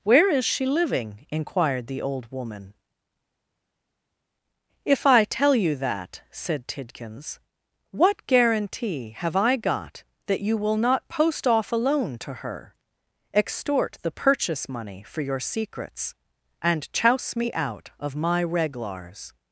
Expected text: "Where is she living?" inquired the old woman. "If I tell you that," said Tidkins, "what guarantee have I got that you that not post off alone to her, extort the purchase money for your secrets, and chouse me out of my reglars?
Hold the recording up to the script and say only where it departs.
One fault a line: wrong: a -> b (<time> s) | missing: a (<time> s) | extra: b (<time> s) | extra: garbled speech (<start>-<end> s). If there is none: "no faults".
wrong: that -> will (10.6 s)